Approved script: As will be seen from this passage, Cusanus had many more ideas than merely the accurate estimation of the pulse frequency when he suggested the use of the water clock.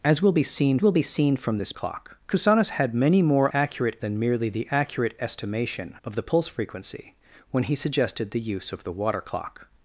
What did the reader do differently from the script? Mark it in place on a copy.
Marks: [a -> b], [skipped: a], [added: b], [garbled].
As will be seen [added: will be seen] from this [passage, -> clock] Cusanus had many more [ideas -> accurate] than merely the accurate estimation of the pulse frequency when he suggested the use of the water clock.